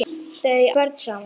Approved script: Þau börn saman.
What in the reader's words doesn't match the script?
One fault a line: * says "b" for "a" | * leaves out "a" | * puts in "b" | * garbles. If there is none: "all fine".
all fine